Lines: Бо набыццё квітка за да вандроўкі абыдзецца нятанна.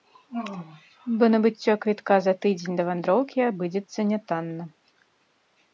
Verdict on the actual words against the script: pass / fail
fail